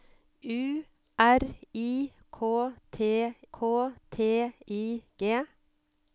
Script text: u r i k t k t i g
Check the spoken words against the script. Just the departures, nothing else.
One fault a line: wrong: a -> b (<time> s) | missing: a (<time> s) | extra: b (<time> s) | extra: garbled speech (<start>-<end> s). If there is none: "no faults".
no faults